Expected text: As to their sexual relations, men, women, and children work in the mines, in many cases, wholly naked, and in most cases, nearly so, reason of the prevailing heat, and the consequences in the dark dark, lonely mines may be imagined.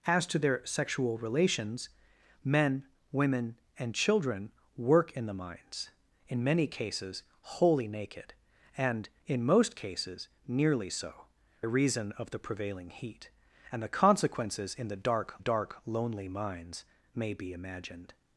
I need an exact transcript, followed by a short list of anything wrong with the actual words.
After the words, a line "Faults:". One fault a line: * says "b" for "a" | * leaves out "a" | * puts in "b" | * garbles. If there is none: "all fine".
As to their sexual relations, men, women, and children work in the mines, in many cases, wholly naked, and in most cases, nearly so, reason of the prevailing heat, and the consequences in the dark dark, lonely mines may be imagined.
Faults:
all fine